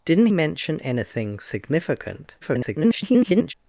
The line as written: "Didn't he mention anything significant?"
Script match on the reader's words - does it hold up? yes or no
no